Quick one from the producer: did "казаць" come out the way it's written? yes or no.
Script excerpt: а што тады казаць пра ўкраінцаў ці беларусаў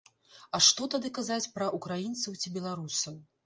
yes